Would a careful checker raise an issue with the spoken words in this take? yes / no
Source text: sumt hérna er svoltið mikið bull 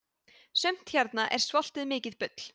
no